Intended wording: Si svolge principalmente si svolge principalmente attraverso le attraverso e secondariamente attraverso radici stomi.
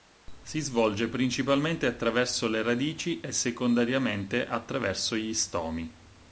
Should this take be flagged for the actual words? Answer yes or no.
yes